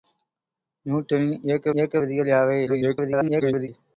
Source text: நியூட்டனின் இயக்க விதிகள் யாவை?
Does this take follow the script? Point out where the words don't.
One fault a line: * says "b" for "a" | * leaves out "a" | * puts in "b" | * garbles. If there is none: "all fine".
* puts in "இயக்க"
* garbles